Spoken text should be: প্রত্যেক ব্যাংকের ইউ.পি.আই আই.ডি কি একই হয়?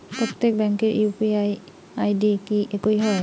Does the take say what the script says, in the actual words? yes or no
yes